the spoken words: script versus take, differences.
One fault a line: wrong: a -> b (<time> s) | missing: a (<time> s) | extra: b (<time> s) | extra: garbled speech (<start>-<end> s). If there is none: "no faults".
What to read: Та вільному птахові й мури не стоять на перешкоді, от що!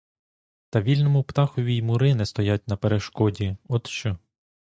no faults